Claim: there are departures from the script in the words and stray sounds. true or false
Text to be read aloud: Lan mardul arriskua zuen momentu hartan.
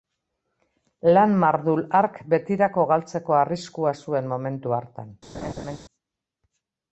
true